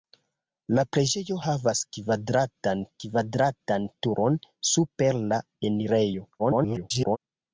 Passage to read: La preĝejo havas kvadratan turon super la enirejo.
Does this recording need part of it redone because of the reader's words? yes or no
yes